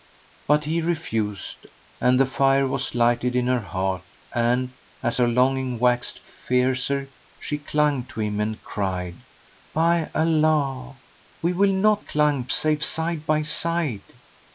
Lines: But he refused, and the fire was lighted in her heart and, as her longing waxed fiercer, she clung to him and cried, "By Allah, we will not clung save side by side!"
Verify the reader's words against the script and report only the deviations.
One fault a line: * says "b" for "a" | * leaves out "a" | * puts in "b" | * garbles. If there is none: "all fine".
all fine